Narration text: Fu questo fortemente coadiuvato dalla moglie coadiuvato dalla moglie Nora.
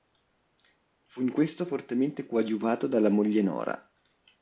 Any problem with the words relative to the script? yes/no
yes